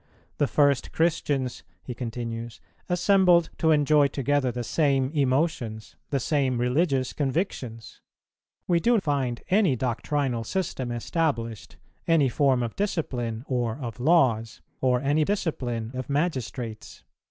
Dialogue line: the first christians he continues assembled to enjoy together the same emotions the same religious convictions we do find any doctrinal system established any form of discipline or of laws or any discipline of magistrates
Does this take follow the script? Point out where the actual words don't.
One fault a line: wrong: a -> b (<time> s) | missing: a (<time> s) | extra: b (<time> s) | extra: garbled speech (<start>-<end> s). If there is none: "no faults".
no faults